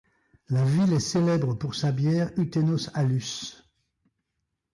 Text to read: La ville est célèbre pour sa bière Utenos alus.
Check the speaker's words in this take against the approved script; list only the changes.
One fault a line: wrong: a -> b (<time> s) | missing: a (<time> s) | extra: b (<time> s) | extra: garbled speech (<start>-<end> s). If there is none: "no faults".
no faults